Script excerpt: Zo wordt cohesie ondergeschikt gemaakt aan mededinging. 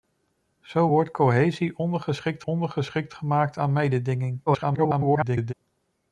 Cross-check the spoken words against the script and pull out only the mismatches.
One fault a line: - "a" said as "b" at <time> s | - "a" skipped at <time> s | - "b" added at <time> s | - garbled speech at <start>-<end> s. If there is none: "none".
- "ondergeschikt" added at 2.5 s
- garbled speech at 4.5-5.5 s